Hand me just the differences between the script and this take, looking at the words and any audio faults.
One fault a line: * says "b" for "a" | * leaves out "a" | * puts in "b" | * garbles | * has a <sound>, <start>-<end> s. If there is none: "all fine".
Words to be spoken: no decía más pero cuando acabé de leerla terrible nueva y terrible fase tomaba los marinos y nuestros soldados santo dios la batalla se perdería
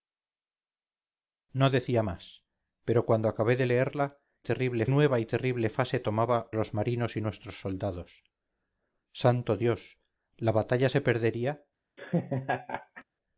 * has a laugh, 12.0-13.0 s